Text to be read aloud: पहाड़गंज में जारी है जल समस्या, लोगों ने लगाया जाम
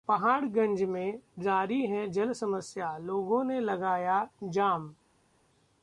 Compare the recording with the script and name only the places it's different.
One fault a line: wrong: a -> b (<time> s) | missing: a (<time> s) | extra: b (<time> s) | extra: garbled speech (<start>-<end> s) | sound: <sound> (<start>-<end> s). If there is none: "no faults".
no faults